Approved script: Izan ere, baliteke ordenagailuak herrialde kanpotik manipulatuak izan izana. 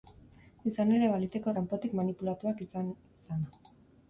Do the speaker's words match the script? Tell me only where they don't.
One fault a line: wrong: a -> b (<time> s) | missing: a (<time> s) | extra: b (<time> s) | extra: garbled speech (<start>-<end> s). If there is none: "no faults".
missing: ordenagailuak herrialde (1.5 s)